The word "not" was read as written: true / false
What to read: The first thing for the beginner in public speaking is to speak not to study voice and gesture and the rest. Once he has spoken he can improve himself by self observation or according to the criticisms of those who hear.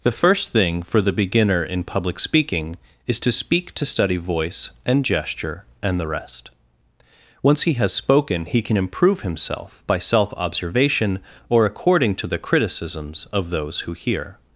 false